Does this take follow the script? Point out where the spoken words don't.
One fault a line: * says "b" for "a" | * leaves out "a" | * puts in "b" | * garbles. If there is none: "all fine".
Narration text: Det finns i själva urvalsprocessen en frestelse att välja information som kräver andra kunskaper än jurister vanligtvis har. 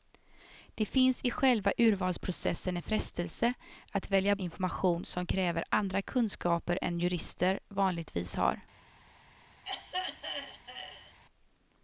all fine